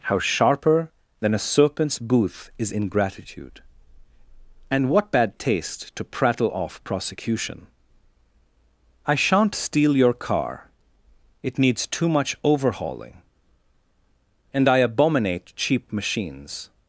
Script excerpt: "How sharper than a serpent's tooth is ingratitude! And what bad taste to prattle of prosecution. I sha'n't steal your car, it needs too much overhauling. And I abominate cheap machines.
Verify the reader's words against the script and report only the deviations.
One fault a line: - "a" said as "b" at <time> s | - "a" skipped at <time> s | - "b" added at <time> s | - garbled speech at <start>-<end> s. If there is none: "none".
- "tooth" said as "booth" at 2.0 s
- "of" said as "off" at 6.5 s